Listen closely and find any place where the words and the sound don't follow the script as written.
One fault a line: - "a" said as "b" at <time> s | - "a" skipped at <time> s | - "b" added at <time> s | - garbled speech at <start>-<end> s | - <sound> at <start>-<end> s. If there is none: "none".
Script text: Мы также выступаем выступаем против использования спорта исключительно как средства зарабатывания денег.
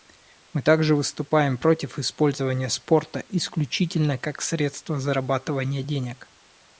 - "выступаем" skipped at 1.6 s